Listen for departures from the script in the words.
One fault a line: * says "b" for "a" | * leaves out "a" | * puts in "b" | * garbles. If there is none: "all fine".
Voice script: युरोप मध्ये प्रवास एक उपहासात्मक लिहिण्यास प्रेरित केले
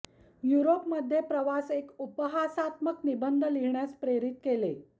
* puts in "निबंध"